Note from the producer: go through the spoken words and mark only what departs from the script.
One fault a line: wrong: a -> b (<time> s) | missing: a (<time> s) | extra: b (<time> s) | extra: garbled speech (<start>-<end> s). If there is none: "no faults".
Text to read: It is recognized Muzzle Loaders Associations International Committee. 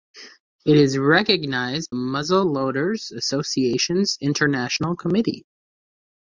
no faults